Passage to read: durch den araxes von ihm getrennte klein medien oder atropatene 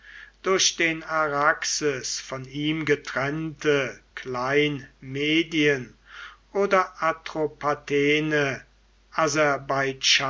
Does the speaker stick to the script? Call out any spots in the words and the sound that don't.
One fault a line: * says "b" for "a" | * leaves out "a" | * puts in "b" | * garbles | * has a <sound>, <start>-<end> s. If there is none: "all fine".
all fine